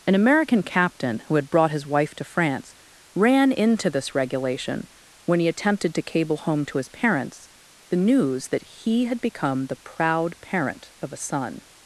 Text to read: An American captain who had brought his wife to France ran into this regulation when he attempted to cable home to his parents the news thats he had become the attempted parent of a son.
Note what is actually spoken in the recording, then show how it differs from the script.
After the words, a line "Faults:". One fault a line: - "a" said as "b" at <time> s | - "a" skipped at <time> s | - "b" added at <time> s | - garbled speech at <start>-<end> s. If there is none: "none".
An American captain who had brought his wife to France ran into this regulation when he attempted to cable home to his parents the news that he had become the proud parent of a son.
Faults:
- "thats" said as "that" at 8.5 s
- "attempted" said as "proud" at 9.8 s